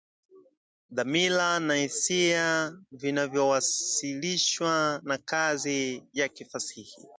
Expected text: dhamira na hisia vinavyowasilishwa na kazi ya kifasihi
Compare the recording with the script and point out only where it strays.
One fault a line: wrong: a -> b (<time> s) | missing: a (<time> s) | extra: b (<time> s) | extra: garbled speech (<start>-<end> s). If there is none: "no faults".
no faults